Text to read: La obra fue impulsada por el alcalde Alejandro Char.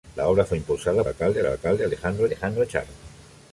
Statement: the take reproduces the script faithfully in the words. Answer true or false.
false